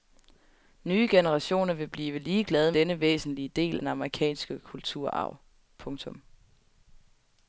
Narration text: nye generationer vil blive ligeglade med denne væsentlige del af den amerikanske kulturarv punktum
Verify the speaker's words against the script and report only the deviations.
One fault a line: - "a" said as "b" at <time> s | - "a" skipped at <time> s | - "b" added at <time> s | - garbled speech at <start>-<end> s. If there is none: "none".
- "med" skipped at 2.7 s
- "af" skipped at 3.8 s